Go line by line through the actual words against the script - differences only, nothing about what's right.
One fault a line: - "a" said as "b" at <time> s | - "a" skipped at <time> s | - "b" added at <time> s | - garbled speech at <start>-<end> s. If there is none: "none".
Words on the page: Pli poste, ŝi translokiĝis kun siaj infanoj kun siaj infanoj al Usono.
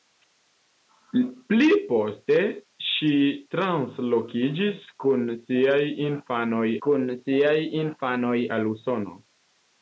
none